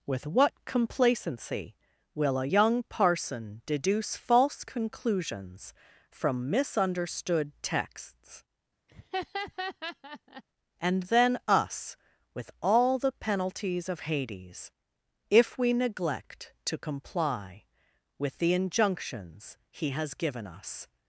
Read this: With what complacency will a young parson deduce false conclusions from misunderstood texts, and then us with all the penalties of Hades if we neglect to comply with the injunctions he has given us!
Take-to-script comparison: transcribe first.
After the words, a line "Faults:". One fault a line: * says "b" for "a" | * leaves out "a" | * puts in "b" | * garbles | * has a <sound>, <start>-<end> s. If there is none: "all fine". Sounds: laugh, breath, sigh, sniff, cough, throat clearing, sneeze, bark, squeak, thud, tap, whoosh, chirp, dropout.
With what complacency will a young parson deduce false conclusions from misunderstood texts, and then us with all the penalties of Hades if we neglect to comply with the injunctions he has given us!
Faults:
* has a laugh, 8.9-10.4 s